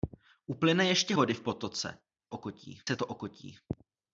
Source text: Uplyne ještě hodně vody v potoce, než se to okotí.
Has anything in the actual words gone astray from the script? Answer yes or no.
yes